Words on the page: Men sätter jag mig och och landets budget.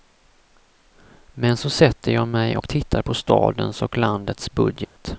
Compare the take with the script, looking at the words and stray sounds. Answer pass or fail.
fail